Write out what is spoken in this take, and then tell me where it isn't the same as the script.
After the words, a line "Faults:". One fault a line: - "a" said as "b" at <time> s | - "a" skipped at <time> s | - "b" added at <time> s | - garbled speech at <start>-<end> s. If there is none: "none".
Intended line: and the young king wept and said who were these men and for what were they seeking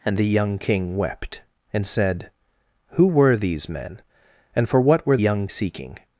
and the young king wept and said who were these men and for what were young seeking
Faults:
- "they" said as "young" at 5.2 s